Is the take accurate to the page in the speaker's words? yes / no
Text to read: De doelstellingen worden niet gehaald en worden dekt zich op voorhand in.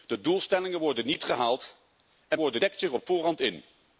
yes